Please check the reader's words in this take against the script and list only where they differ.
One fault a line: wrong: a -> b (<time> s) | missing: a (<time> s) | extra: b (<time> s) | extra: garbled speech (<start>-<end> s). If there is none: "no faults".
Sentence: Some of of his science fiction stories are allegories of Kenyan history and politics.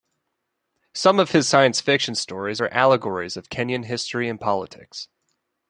missing: of (1.3 s)